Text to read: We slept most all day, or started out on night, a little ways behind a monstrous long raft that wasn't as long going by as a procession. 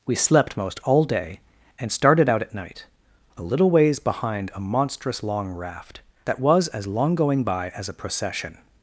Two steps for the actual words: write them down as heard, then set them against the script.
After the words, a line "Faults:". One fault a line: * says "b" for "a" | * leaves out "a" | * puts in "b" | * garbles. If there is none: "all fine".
We slept most all day, and started out at night, a little ways behind a monstrous long raft that was as long going by as a procession.
Faults:
* says "and" for "or"
* says "at" for "on"
* says "was" for "wasn't"